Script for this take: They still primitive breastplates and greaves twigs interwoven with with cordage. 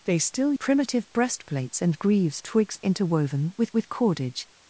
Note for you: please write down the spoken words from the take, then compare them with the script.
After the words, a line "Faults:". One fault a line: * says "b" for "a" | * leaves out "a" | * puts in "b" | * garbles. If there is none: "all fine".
They still primitive breastplates and greaves twigs interwoven with with cordage.
Faults:
all fine